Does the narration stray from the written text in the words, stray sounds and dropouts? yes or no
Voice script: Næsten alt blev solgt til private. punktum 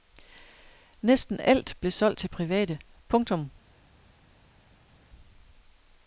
no